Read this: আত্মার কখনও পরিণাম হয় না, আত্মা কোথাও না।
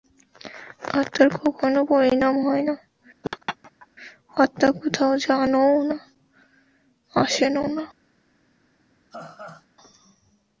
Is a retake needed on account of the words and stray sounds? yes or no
yes